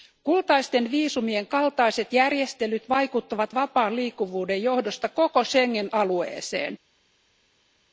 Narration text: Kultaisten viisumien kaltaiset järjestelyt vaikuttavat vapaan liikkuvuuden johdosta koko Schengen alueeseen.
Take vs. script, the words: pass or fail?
pass